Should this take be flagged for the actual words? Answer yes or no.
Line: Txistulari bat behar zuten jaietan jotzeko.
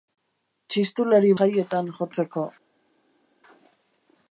yes